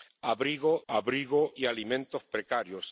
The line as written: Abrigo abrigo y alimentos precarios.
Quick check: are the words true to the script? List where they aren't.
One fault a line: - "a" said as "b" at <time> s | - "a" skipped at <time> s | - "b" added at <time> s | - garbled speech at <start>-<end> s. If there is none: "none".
none